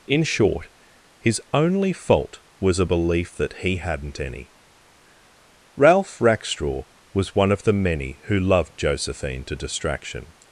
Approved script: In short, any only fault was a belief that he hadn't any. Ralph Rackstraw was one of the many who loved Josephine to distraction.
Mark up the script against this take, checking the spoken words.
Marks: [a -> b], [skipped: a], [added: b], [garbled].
In short, [any -> his] only fault was a belief that he hadn't any. Ralph Rackstraw was one of the many who loved Josephine to distraction.